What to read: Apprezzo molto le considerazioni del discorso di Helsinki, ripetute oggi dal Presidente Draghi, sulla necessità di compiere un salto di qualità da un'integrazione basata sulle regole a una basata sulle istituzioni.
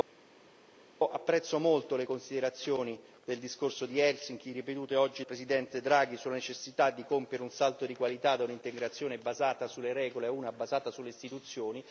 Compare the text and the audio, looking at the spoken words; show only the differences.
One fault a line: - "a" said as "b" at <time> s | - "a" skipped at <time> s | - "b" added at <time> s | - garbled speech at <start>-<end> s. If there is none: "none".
- "dal" skipped at 5.2 s